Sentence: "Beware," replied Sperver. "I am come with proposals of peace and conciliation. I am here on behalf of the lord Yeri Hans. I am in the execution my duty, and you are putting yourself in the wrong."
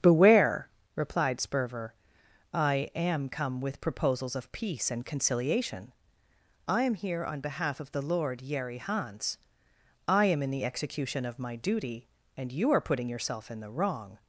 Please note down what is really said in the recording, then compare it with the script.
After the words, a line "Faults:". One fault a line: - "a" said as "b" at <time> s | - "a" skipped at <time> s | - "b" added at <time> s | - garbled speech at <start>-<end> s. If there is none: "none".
"Beware," replied Sperver. "I am come with proposals of peace and conciliation. I am here on behalf of the lord Yeri Hans. I am in the execution of my duty, and you are putting yourself in the wrong."
Faults:
- "of" added at 11.3 s